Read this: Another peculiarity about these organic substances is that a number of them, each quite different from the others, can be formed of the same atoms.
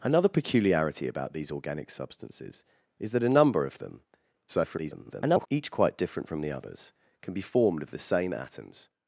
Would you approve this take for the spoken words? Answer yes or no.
no